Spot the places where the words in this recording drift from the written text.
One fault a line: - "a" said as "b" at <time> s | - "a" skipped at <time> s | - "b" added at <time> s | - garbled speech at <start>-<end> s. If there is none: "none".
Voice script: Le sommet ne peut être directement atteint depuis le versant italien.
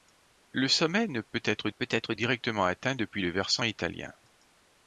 - "peut être" added at 1.7 s